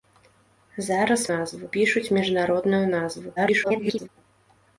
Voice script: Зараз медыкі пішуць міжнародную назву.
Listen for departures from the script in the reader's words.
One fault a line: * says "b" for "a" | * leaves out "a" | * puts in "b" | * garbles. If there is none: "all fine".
* says "назву" for "медыкі"
* garbles